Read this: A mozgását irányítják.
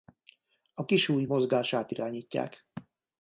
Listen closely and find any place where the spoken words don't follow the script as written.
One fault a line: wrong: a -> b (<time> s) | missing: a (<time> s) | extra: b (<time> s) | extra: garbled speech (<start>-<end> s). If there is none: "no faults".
extra: kisujj (0.8 s)